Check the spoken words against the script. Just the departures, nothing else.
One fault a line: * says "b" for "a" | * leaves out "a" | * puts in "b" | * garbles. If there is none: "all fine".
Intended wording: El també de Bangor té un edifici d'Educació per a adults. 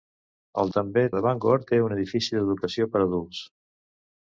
all fine